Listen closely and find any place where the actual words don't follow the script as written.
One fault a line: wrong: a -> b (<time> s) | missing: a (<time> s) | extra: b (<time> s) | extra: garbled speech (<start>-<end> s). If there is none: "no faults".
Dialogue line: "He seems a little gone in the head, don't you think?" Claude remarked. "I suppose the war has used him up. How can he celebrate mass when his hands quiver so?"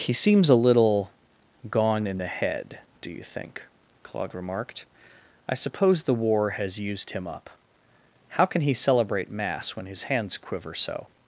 wrong: don't -> do (3.0 s)